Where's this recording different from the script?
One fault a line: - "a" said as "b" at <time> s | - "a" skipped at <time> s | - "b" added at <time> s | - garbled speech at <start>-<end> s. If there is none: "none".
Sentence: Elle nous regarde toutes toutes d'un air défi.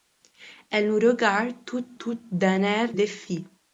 none